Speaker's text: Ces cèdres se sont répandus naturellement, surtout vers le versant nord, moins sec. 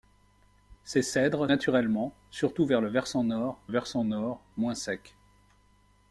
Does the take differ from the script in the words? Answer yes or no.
yes